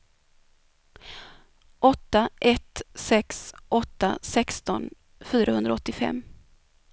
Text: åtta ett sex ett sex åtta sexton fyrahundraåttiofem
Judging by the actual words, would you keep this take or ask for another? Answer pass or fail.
fail